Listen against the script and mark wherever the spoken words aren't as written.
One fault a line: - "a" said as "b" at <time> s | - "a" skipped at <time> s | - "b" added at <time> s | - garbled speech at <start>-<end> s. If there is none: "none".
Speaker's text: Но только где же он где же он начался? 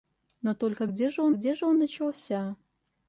none